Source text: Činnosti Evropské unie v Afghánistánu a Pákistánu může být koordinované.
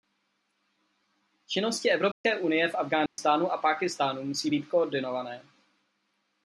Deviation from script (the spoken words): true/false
true